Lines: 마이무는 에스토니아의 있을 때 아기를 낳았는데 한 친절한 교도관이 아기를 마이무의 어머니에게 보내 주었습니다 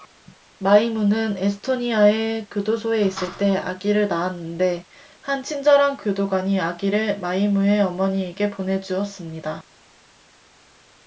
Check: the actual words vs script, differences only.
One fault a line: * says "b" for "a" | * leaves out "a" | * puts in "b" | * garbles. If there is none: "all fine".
* puts in "교도소에"